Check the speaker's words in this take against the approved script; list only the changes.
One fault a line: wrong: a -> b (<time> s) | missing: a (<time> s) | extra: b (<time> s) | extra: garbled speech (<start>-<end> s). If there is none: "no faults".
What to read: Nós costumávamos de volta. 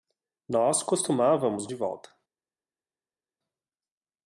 no faults